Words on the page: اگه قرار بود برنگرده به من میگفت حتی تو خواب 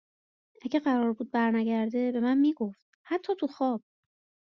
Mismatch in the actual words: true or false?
false